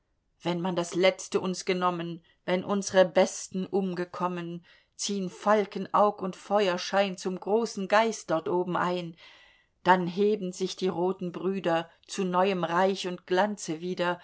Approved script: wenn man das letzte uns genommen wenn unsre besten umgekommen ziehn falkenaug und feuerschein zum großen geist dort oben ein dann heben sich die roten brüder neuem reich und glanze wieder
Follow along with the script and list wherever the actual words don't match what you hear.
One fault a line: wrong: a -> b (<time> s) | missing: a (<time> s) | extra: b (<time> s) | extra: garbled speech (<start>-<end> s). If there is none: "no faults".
extra: zu (12.1 s)